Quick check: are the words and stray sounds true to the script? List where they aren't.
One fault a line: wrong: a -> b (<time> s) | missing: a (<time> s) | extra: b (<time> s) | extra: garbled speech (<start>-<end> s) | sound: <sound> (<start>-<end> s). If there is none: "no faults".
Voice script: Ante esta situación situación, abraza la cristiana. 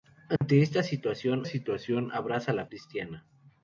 sound: dropout (0.4-0.4 s)